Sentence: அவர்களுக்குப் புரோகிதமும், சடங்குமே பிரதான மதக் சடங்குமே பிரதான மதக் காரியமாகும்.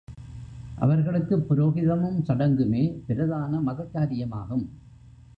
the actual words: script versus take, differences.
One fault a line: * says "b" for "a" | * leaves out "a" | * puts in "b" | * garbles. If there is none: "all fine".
* leaves out "சடங்குமே பிரதான மதக்"